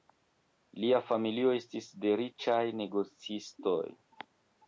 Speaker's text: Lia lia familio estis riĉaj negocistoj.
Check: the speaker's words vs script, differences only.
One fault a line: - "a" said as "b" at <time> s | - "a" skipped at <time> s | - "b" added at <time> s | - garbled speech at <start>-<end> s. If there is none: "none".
- "lia" skipped at 1.0 s
- "de" added at 2.0 s